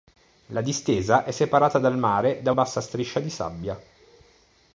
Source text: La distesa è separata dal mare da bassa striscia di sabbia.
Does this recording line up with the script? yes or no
yes